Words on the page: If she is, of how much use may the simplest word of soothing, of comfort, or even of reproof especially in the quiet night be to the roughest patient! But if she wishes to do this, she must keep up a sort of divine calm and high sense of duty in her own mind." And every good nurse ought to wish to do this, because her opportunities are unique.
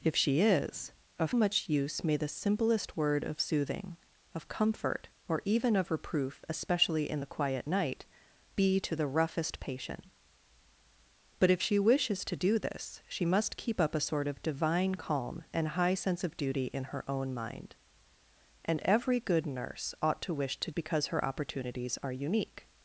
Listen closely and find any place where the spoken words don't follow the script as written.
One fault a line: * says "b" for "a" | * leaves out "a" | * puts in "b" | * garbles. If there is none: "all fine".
* leaves out "how"
* leaves out "do this"